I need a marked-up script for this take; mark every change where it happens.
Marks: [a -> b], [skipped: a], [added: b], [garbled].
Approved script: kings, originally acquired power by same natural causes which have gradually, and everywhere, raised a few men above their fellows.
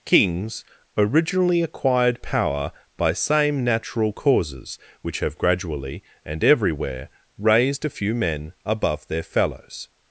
kings, originally acquired power by same natural causes which have gradually, and everywhere, raised a few men above their fellows.